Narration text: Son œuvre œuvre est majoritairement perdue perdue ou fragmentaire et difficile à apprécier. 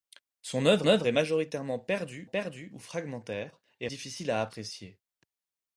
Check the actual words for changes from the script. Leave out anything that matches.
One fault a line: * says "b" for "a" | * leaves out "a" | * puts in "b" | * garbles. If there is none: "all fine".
all fine